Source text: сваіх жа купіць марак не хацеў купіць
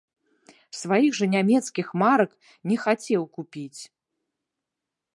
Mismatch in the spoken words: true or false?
true